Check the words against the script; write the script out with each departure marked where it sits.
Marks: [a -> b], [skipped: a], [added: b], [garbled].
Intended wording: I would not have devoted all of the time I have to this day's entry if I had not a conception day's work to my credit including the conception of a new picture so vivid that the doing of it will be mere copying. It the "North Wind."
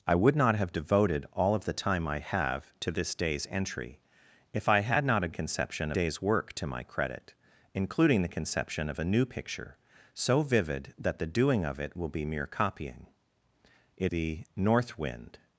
I would not have devoted all of the time I have to this day's entry if I had not a conception day's work to my credit including the conception of a new picture so vivid that the doing of it will be mere copying. It the "North Wind."